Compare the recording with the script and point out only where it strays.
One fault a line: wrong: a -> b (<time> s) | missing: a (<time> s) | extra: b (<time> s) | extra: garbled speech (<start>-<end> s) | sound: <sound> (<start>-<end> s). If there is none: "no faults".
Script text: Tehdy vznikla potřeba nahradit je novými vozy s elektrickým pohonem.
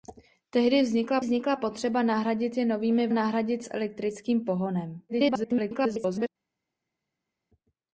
extra: vznikla (1.2 s)
wrong: vozy -> nahradit (3.1 s)
extra: garbled speech (5.1-6.3 s)